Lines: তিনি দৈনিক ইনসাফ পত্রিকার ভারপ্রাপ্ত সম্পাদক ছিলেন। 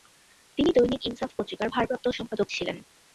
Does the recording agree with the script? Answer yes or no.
yes